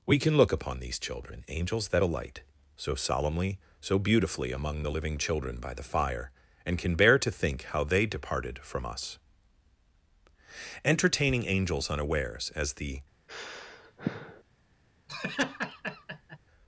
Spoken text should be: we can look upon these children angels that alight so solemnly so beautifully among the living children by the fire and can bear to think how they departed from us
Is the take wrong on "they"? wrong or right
right